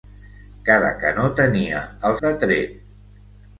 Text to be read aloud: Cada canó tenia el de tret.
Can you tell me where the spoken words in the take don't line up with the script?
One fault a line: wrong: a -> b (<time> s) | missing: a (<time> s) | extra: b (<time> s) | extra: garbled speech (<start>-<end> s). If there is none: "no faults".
no faults